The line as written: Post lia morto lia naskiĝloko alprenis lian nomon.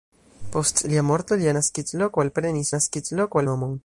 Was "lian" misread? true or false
true